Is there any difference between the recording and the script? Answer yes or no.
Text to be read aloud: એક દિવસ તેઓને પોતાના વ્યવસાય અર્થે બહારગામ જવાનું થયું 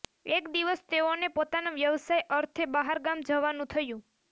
no